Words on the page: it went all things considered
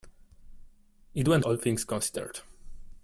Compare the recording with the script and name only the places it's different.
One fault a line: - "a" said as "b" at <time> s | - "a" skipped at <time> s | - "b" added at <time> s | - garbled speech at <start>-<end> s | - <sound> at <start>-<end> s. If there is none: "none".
none